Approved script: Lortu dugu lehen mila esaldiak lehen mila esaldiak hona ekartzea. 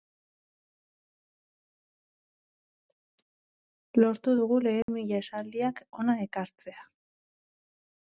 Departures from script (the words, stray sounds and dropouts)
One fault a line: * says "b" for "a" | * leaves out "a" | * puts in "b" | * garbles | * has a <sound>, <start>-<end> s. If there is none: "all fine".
* has a dropout, 4.8-4.9 s
* leaves out "lehen mila esaldiak"